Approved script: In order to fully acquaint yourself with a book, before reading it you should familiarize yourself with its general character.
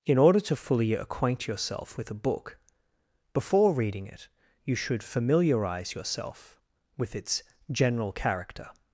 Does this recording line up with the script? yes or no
yes